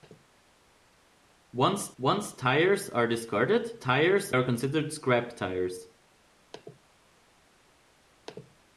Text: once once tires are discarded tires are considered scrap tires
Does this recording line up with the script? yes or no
yes